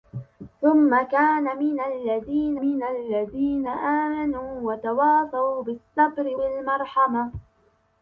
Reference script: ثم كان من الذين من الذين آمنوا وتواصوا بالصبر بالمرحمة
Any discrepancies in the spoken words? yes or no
no